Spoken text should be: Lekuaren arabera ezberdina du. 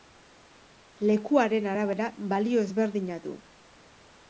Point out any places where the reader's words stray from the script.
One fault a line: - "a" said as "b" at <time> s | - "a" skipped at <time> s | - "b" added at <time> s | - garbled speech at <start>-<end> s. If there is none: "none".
- "balio" added at 2.4 s